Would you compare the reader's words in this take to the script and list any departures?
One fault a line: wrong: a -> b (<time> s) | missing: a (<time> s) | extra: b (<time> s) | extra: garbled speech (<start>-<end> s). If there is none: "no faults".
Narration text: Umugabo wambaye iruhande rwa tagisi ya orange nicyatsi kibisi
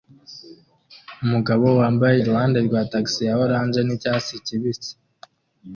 no faults